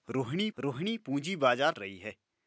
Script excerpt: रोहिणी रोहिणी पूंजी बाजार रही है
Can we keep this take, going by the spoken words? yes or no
yes